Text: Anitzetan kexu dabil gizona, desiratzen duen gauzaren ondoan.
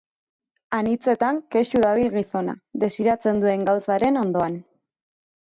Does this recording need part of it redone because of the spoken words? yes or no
no